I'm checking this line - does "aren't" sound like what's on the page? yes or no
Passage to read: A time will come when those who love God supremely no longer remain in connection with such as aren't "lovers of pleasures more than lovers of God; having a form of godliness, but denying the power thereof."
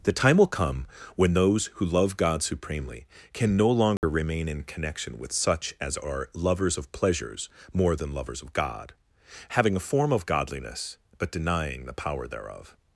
no